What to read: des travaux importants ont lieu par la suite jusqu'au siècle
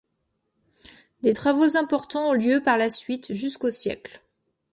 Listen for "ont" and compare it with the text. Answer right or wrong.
right